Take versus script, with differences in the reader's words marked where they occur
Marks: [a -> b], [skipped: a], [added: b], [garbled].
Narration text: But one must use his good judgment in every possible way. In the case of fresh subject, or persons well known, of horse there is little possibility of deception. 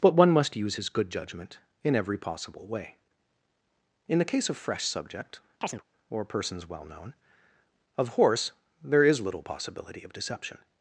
But one must use his good judgment in every possible way. In the case of fresh subject, or persons well known, of horse there is little possibility of deception.